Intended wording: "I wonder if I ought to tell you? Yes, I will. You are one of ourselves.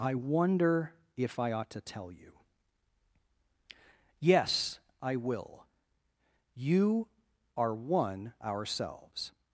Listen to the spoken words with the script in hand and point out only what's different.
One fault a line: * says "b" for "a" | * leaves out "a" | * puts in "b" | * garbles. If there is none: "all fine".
* leaves out "of"